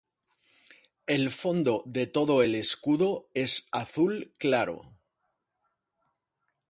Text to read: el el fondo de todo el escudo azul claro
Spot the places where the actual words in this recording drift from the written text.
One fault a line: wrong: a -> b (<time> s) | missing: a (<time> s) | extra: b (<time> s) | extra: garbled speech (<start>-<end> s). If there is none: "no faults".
missing: el (1.3 s)
extra: es (3.3 s)